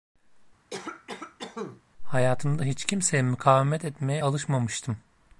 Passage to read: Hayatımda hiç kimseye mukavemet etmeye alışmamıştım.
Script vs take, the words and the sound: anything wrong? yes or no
yes